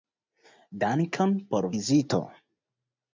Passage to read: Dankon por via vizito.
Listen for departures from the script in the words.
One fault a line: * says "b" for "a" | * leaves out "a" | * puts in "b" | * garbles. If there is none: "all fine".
* leaves out "via"